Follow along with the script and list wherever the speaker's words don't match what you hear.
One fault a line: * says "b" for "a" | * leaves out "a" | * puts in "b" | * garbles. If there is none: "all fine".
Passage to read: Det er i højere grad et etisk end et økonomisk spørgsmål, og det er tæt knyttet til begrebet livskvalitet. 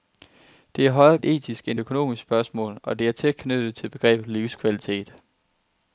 * leaves out "grad"
* leaves out "et"